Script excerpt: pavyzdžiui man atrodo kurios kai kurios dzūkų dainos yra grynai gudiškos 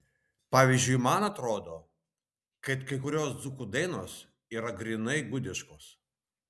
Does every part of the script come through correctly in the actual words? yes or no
no